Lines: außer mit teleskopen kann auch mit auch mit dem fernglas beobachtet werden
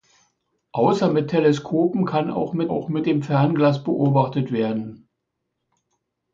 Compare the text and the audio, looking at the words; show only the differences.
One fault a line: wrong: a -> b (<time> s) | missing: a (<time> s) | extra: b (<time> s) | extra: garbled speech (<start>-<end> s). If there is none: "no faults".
no faults